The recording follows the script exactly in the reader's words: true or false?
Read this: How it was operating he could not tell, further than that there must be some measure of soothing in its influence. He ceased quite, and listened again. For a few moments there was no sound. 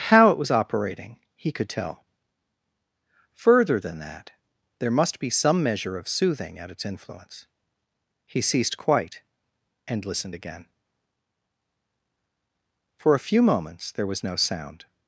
false